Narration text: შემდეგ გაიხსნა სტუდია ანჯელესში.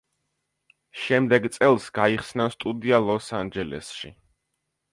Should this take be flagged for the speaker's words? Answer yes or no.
yes